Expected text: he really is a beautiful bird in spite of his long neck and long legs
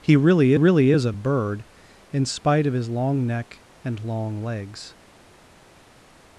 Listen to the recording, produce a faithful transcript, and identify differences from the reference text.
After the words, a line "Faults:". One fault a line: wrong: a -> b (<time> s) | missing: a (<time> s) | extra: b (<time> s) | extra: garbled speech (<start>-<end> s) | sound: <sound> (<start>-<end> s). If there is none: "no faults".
he really really is a bird in spite of his long neck and long legs
Faults:
extra: really (0.5 s)
missing: beautiful (1.1 s)